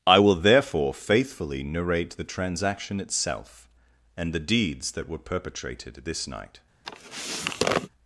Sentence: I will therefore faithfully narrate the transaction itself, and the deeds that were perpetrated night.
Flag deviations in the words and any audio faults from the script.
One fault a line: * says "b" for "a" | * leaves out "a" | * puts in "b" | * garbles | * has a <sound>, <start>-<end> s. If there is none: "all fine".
* puts in "this"
* has a sniff, 6.8-7.9 s